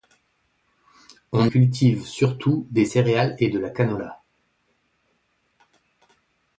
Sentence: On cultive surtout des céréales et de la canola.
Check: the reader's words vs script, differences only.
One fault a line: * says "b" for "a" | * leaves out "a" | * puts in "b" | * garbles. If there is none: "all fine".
all fine